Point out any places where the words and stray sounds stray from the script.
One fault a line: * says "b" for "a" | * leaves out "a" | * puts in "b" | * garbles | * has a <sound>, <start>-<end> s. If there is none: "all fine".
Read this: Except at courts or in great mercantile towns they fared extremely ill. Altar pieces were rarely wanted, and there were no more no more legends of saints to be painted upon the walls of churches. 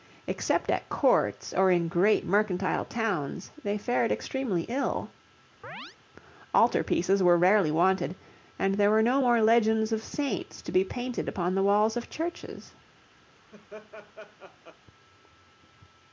* has a chirp, 5.6-6.0 s
* leaves out "no more"
* has a laugh, 13.3-14.8 s